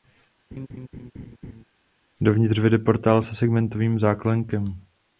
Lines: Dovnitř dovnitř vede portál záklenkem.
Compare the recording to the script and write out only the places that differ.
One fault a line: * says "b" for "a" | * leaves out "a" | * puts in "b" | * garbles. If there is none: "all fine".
* leaves out "dovnitř"
* puts in "se segmentovým"